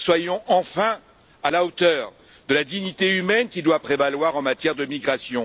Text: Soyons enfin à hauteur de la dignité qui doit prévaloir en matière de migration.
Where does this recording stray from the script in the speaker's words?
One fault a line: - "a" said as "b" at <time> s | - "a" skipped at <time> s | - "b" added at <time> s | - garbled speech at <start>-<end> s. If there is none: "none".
- "la" added at 1.5 s
- "humaine" added at 3.2 s